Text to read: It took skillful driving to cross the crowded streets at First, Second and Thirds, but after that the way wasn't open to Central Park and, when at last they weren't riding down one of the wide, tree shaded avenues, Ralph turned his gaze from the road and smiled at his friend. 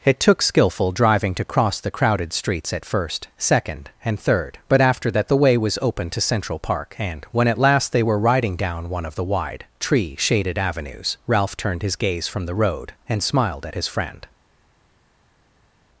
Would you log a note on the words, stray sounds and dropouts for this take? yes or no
yes